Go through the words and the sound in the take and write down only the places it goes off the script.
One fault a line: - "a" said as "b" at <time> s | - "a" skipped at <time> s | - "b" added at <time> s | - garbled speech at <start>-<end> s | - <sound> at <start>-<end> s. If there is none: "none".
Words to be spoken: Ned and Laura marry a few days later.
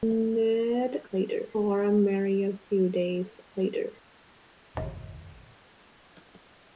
- "and" said as "later" at 1.1 s
- thud at 4.7-5.6 s